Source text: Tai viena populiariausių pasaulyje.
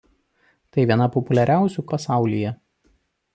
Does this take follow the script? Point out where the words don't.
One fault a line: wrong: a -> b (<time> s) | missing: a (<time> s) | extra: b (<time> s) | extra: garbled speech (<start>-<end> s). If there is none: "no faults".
no faults